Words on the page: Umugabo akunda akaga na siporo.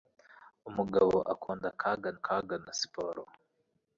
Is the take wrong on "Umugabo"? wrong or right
right